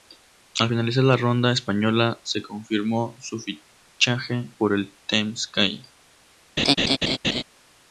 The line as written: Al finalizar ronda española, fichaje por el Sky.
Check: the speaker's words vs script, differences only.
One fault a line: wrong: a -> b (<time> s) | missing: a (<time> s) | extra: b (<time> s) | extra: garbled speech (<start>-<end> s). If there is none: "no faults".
extra: la (1.0 s)
extra: se confirmó su (2.2 s)
extra: Team (5.1 s)